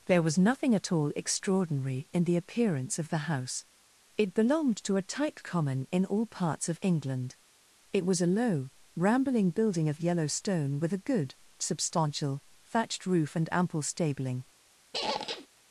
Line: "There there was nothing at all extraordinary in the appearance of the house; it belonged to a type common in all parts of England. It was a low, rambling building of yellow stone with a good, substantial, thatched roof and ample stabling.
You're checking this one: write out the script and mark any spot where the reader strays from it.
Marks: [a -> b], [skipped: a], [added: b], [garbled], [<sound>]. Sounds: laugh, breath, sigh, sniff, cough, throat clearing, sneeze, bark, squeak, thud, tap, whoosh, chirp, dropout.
"There [skipped: there] was nothing at all extraordinary in the appearance of the house; it belonged to a type common in all parts of England. It was a low, rambling building of yellow stone with a good, substantial, thatched roof and ample stabling. [squeak]